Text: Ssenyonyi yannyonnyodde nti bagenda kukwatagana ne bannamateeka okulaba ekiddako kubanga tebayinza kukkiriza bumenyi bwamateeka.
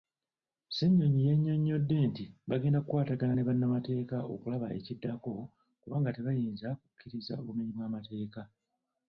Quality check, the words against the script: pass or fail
pass